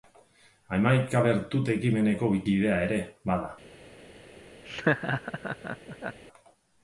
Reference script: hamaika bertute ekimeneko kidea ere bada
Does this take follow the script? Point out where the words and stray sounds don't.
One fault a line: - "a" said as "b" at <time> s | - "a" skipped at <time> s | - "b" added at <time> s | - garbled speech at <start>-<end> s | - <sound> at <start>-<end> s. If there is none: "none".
- laugh at 4.6-6.2 s